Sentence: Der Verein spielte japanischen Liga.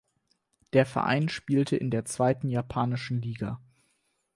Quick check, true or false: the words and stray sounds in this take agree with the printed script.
false